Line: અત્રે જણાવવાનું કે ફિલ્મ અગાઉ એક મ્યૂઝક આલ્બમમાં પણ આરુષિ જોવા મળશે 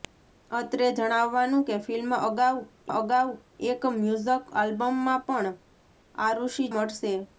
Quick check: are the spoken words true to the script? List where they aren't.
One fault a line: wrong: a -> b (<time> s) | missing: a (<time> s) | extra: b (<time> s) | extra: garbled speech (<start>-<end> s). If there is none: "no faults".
extra: અગાઉ (2.9 s)
missing: જોવા (6.6 s)